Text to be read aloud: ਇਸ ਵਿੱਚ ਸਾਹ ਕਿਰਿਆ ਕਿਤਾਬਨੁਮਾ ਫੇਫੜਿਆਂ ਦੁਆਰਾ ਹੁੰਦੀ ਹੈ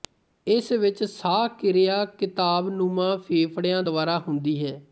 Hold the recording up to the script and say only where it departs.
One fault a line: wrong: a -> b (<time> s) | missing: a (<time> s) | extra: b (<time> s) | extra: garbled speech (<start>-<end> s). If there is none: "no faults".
no faults